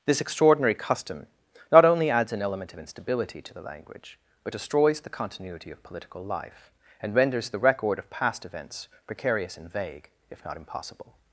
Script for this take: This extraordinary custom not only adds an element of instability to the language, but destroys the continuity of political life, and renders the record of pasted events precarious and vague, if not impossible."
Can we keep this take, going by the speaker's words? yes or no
no